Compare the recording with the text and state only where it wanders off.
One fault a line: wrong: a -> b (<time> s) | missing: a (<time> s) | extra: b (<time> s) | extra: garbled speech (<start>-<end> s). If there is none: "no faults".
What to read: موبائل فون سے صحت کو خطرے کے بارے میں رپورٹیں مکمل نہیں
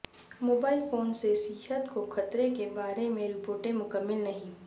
no faults